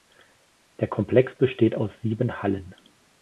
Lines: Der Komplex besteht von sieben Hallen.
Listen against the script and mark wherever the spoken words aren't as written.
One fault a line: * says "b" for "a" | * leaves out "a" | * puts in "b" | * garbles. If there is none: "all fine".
* says "aus" for "von"